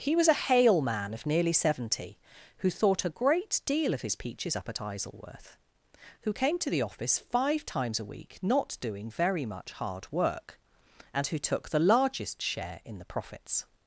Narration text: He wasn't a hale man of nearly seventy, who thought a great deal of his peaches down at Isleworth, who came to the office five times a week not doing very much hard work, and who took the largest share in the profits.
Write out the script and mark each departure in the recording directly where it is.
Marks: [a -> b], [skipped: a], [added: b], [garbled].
He [wasn't -> was] a hale man of nearly seventy, who thought a great deal of his peaches [down -> up] at Isleworth, who came to the office five times a week not doing very much hard work, and who took the largest share in the profits.